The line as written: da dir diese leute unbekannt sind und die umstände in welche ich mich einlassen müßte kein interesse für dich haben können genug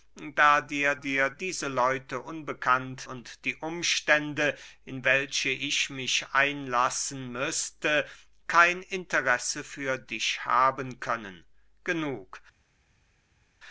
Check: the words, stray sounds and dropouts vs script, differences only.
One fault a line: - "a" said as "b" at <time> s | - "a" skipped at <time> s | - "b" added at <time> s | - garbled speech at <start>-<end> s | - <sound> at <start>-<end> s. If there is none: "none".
- "dir" added at 0.9 s
- "sind" skipped at 3.1 s